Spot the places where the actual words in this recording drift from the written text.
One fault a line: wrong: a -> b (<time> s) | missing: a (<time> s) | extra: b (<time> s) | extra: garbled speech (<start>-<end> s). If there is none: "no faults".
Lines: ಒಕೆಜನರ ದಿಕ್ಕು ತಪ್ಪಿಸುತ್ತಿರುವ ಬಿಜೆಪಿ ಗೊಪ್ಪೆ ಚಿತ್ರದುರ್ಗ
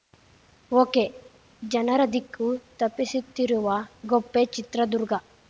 missing: ಬಿಜೆಪಿ (3.7 s)